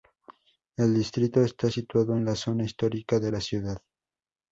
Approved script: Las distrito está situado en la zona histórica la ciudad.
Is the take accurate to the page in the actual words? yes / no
no